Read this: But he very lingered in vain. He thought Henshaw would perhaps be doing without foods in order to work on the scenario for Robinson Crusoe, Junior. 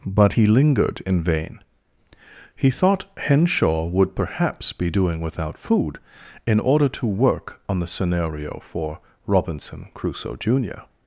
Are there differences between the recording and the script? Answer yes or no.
yes